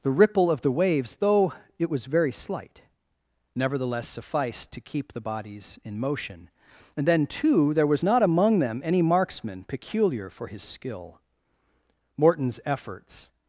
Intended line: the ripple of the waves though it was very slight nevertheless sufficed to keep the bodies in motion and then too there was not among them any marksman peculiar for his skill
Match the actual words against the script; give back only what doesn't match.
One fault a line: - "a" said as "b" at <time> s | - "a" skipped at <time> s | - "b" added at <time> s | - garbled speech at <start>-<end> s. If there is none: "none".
- "morton's efforts" added at 12.2 s